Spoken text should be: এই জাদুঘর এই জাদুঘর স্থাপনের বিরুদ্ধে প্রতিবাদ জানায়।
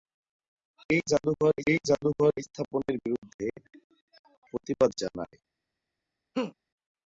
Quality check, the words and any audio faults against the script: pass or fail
fail